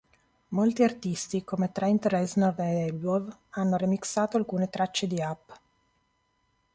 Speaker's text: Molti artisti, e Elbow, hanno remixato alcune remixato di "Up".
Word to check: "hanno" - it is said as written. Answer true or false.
true